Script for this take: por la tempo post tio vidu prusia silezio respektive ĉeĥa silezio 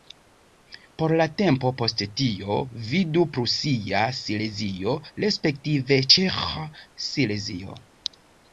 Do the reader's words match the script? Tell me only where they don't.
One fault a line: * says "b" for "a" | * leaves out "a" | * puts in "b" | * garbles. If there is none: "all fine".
all fine